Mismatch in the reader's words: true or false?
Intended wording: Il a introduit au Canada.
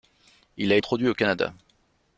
false